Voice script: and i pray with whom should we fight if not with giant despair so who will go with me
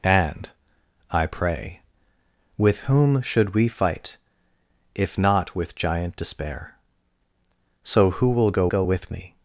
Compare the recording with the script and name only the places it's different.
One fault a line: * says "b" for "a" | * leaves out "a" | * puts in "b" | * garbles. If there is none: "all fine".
* puts in "go"